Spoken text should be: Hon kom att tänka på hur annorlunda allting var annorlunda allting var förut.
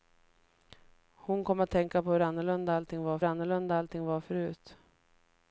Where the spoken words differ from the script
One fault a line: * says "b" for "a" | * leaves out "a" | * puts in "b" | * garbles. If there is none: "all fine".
all fine